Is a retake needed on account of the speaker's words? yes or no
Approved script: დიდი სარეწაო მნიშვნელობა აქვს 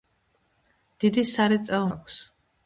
yes